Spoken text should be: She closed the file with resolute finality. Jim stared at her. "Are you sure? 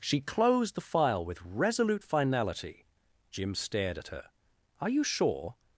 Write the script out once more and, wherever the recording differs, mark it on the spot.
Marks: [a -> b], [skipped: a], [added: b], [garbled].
She closed the file with resolute finality. Jim stared at her. "Are you sure?